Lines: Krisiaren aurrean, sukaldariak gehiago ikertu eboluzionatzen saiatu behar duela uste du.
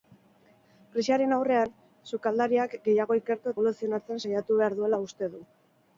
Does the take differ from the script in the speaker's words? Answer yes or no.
no